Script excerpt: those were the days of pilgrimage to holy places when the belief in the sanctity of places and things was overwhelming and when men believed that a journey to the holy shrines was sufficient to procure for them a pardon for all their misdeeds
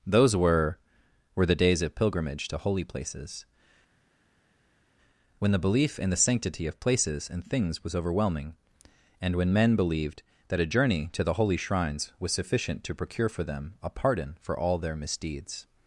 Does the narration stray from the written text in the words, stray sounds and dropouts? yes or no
yes